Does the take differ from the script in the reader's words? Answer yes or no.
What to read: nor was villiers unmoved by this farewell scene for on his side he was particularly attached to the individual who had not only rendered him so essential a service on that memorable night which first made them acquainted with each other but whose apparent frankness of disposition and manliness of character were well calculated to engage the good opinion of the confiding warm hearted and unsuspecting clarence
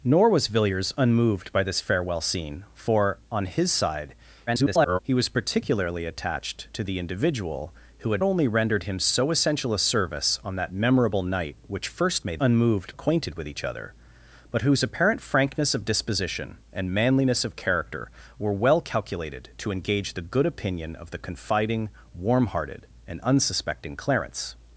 yes